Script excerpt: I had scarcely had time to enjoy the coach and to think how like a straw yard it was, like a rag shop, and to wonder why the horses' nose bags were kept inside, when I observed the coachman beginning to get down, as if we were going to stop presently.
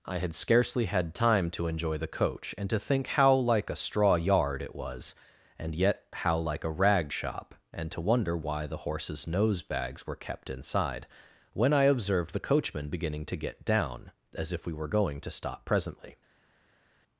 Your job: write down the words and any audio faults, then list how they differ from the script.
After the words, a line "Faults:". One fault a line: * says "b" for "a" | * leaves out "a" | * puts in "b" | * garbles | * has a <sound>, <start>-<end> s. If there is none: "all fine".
I had scarcely had time to enjoy the coach and to think how like a straw yard it was, and yet how like a rag shop, and to wonder why the horses' nose bags were kept inside, when I observed the coachman beginning to get down, as if we were going to stop presently.
Faults:
* puts in "and yet how"